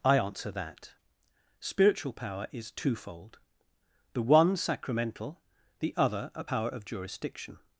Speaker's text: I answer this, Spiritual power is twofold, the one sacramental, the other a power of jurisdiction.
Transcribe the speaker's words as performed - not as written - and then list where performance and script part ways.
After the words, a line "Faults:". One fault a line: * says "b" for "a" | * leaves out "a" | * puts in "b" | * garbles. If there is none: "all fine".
I answer that, Spiritual power is twofold, the one sacramental, the other a power of jurisdiction.
Faults:
* says "that" for "this"